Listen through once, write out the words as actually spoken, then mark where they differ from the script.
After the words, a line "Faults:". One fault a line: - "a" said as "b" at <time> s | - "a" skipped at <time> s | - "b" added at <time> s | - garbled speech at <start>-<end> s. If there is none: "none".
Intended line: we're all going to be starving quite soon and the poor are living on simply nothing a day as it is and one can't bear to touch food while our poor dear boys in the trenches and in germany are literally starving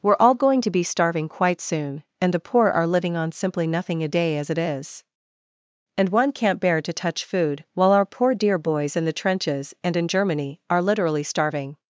we're all going to be starving quite soon and the poor are living on simply nothing a day as it is and one can't bear to touch food while our poor dear boys in the trenches and in germany are literally starving
Faults:
none